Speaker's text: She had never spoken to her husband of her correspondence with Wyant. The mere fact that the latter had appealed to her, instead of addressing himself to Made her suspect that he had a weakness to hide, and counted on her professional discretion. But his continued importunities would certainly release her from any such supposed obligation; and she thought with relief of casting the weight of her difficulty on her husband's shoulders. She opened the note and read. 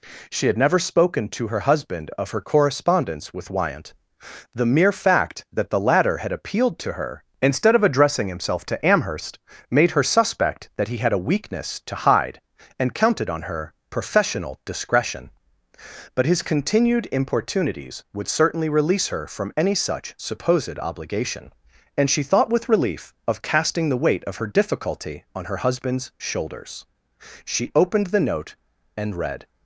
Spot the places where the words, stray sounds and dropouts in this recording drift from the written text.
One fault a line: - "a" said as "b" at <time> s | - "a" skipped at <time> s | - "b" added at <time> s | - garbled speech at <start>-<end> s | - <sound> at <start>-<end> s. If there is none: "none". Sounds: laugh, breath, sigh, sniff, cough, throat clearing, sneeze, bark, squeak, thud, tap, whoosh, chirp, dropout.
- "Amherst" added at 8.8 s